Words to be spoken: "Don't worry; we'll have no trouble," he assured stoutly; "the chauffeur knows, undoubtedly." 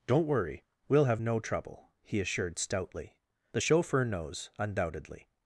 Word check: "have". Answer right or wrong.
right